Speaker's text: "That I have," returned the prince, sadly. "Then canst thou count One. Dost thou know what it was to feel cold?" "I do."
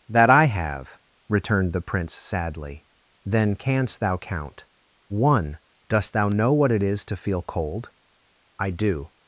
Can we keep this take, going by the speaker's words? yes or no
no